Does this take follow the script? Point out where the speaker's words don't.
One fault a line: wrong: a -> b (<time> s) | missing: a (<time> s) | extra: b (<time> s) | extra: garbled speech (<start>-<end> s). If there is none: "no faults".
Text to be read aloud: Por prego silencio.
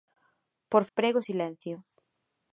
no faults